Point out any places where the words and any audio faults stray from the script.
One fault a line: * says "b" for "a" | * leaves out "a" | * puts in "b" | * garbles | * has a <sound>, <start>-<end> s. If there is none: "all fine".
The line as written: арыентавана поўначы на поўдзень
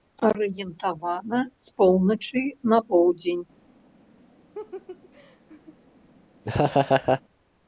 * puts in "з"
* has a laugh, 4.5-5.8 s
* has a laugh, 6.4-7.2 s